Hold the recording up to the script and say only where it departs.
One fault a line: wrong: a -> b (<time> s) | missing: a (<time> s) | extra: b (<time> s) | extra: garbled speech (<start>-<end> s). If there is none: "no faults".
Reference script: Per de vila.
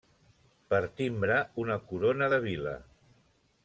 extra: timbre una corona (1.0 s)